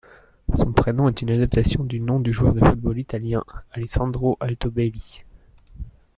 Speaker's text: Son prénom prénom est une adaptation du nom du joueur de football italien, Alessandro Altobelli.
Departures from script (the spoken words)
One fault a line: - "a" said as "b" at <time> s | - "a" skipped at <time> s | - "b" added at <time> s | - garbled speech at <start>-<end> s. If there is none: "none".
- "prénom" skipped at 1.1 s